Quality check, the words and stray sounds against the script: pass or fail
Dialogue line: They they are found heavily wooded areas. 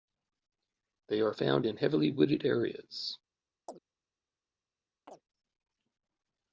fail